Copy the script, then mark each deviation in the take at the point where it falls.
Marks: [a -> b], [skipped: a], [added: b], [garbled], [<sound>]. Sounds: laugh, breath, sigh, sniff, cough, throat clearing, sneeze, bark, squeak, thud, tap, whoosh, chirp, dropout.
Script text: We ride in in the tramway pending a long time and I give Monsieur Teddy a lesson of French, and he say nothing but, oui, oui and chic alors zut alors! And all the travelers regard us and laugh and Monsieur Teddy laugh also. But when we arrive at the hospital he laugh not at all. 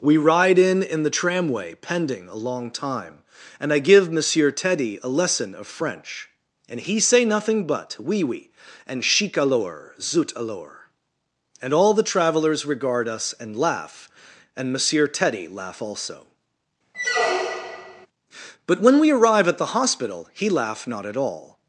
We ride in in the tramway pending a long time and I give Monsieur Teddy a lesson of French, and he say nothing but, oui, oui and chic alors zut alors! And all the travelers regard us and laugh and Monsieur Teddy laugh also. [squeak] But when we arrive at the hospital he laugh not at all.